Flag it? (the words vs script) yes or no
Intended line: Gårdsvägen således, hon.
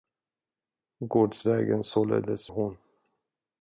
no